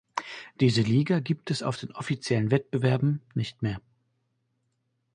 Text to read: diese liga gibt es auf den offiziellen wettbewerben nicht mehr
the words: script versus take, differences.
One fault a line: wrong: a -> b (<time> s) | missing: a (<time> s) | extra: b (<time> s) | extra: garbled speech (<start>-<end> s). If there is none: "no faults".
no faults